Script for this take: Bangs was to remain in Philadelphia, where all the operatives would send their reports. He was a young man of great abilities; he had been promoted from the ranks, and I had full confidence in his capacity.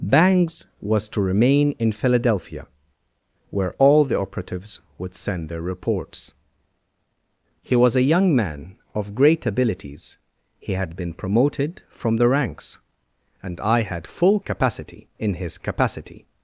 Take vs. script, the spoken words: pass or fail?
fail